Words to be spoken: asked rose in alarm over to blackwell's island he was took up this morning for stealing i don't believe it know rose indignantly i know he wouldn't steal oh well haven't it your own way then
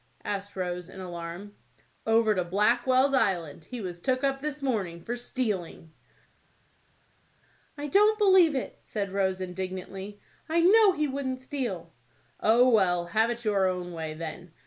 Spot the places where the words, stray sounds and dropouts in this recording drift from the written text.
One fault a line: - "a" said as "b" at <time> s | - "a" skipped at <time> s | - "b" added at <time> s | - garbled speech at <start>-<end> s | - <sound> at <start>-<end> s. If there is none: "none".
- "know" said as "said" at 8.8 s
- "haven't" said as "have" at 13.1 s